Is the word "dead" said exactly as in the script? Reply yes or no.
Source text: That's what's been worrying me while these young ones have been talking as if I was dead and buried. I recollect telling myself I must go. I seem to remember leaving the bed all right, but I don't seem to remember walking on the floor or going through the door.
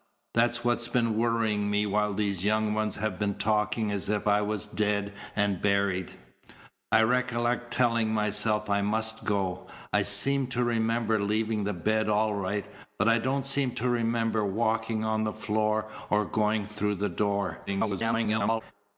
yes